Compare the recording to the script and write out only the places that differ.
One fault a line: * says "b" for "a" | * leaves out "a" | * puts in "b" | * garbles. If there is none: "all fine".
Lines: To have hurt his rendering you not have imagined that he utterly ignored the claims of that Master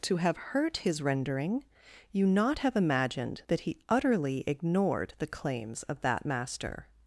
all fine